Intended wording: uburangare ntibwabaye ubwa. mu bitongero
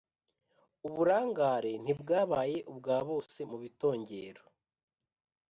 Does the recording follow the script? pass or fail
fail